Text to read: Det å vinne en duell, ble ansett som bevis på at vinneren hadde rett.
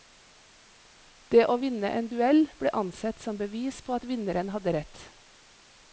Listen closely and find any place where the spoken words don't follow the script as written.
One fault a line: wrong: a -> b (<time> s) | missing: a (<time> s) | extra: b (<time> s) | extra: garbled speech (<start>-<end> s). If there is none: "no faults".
no faults